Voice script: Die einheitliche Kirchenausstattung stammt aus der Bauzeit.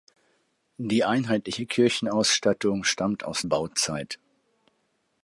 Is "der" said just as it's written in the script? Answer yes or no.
no